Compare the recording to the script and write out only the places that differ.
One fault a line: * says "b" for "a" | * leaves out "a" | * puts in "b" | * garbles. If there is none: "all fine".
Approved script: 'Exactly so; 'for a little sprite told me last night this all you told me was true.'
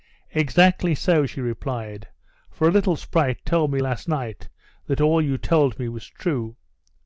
* puts in "she replied"
* says "that" for "this"